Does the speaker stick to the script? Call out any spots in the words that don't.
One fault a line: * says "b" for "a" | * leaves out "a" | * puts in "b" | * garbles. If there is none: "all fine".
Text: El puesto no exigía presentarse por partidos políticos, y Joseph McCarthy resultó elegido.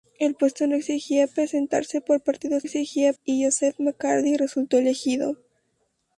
* says "exigía" for "políticos"